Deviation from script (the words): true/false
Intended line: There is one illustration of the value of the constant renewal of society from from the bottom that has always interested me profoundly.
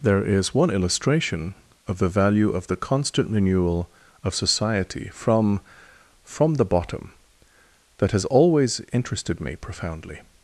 false